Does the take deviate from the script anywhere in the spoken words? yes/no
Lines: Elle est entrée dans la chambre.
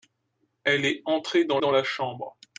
yes